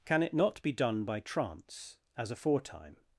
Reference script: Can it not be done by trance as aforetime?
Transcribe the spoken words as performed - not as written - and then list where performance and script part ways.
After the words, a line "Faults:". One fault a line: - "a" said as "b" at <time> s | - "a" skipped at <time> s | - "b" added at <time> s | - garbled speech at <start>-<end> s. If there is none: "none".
Can it not be done by trance as aforetime?
Faults:
none